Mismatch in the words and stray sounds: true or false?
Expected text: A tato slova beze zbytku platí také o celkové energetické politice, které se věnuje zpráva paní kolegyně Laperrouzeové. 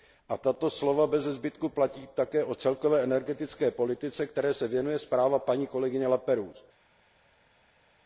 false